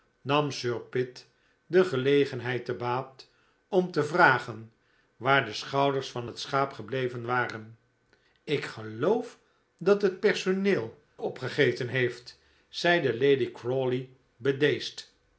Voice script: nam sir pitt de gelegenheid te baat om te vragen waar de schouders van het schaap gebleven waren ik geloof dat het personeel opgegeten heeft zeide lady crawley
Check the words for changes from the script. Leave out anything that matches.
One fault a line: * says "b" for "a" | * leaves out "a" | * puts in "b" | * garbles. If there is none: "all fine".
all fine